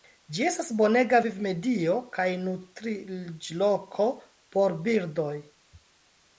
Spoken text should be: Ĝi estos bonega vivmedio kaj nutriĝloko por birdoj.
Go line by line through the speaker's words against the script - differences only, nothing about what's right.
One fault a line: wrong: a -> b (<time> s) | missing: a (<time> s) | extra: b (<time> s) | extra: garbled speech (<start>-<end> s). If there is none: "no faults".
wrong: estos -> estas (0.5 s)